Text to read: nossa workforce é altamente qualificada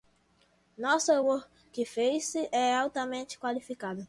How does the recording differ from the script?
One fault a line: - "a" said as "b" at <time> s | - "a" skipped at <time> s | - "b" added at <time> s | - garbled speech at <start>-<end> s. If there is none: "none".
none